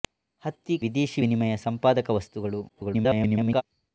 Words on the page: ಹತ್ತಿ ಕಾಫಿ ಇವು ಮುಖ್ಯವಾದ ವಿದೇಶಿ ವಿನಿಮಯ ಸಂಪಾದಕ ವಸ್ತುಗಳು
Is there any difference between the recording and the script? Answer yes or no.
yes